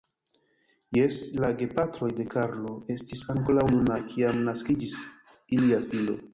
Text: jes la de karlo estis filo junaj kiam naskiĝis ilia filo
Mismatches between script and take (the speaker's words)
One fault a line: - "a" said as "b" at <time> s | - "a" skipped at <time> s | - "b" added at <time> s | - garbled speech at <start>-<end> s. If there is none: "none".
- "gepatroj" added at 1.6 s
- "filo" said as "ankoraŭ" at 3.4 s